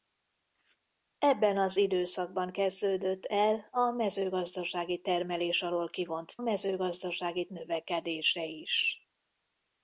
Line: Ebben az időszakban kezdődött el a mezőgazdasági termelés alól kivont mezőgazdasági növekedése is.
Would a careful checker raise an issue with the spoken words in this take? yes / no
no